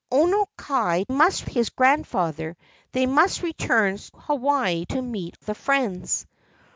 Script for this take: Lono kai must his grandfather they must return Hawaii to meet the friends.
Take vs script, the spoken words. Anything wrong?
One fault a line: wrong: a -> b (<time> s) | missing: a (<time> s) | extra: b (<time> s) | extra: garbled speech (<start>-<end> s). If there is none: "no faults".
no faults